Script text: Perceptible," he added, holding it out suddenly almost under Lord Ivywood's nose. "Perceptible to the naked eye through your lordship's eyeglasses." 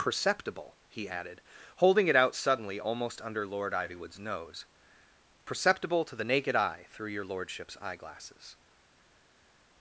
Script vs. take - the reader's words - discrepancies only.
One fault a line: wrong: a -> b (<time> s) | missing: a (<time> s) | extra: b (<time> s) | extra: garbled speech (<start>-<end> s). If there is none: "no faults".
no faults